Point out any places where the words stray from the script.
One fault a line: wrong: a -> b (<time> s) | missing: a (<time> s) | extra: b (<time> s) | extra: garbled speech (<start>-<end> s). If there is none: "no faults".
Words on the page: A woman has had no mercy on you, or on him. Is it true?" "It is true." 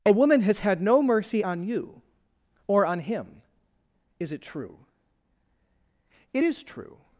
no faults